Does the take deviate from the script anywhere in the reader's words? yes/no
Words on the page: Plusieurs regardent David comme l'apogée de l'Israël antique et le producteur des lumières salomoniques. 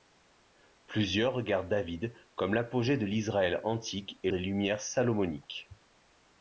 yes